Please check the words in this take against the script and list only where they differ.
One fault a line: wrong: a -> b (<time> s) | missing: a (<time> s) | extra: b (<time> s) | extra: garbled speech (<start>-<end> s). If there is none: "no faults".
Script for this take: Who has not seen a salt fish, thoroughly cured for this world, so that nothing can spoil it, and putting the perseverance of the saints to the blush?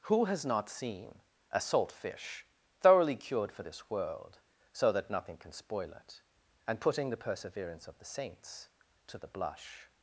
no faults